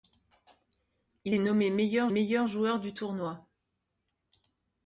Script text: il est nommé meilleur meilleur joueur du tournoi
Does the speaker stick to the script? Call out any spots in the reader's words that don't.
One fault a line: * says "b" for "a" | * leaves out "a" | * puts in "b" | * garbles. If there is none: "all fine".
all fine